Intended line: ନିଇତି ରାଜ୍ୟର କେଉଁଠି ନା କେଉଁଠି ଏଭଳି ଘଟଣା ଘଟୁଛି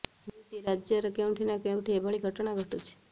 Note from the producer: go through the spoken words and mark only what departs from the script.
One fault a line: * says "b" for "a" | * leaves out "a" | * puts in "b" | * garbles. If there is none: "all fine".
all fine